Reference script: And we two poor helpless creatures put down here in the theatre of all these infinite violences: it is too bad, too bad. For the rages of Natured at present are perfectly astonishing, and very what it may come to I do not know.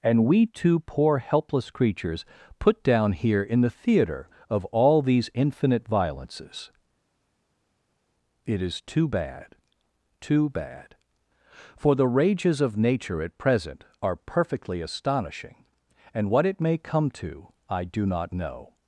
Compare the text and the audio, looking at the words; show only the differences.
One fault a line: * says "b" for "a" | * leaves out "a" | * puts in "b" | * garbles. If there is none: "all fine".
* says "Nature" for "Natured"
* leaves out "very"